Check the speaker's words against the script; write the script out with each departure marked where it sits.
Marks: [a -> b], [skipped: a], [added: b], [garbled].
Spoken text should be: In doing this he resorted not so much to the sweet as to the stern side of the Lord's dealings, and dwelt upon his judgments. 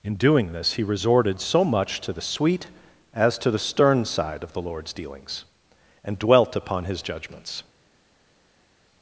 In doing this he resorted [skipped: not] so much to the sweet as to the stern side of the Lord's dealings, and dwelt upon his judgments.